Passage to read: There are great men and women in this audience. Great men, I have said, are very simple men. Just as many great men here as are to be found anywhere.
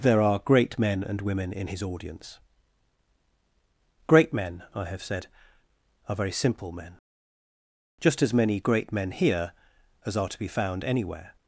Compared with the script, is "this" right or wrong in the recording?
wrong